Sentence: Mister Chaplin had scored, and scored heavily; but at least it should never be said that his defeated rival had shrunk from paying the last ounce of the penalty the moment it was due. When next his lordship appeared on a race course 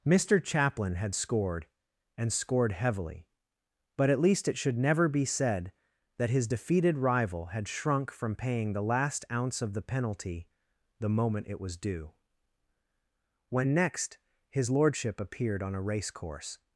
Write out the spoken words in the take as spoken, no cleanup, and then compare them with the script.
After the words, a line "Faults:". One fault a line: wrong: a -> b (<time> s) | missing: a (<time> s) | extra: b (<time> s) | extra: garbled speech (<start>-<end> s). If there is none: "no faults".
Mister Chaplin had scored, and scored heavily; but at least it should never be said that his defeated rival had shrunk from paying the last ounce of the penalty the moment it was due. When next his lordship appeared on a race course
Faults:
no faults